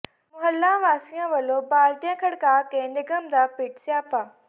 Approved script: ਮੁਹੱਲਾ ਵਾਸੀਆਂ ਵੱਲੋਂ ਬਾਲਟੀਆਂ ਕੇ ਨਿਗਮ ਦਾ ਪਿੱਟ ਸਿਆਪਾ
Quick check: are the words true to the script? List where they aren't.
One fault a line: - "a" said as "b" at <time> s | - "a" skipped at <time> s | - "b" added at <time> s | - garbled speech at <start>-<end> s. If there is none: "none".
- "ਖੜਕਾ" added at 2.2 s